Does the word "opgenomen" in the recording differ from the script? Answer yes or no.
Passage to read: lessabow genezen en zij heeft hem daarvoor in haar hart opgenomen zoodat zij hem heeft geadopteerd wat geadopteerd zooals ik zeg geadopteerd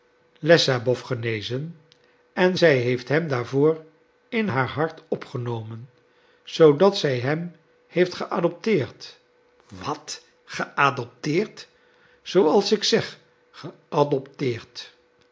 no